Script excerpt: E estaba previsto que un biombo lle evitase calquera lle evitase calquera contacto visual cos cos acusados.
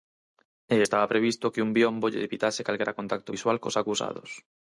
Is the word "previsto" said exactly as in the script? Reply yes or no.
yes